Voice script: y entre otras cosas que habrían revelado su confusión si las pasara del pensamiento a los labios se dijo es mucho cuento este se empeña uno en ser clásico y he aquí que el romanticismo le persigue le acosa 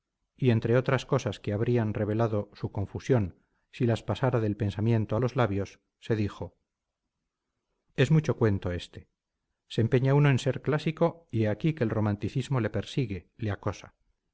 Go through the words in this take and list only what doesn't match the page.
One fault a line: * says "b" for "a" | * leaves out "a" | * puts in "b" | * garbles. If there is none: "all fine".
all fine